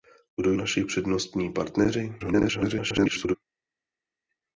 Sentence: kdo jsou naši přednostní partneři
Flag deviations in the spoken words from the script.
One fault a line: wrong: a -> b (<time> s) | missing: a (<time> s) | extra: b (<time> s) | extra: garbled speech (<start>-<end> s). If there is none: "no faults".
missing: jsou (0.5 s)
extra: garbled speech (2.2-3.4 s)